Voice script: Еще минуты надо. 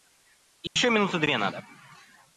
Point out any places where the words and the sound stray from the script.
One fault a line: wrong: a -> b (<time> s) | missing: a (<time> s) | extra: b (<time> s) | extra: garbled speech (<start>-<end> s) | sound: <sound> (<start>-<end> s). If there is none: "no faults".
sound: dropout (0.7-0.8 s)
extra: две (1.2 s)